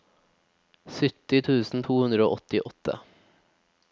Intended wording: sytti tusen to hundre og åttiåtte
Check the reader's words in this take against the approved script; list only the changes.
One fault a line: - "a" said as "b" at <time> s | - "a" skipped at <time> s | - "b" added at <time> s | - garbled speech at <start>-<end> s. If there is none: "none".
none